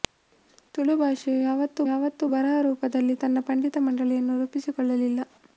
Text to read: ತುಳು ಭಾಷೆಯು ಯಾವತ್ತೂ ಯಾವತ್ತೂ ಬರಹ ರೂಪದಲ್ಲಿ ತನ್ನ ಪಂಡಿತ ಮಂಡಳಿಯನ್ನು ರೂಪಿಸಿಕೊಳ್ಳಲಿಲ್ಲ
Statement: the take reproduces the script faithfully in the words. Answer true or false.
true